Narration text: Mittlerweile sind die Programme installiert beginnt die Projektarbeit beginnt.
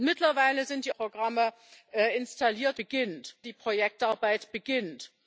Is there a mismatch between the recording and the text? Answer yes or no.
no